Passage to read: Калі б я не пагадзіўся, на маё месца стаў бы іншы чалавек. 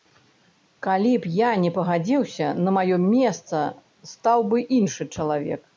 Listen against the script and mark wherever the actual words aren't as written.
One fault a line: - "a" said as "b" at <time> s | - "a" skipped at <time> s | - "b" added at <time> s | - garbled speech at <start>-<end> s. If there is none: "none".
none